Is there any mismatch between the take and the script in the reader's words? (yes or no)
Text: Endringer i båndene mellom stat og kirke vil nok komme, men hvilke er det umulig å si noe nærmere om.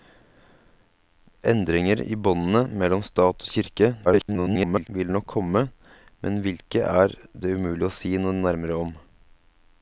yes